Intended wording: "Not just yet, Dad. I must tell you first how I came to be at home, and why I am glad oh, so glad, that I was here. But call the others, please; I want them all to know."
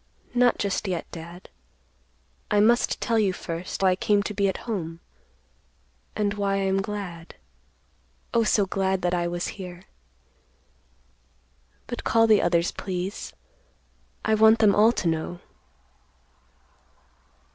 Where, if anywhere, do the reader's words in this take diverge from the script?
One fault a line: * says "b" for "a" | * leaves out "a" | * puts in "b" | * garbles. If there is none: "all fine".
* leaves out "how"